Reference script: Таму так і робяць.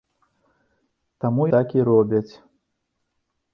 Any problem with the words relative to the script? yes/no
no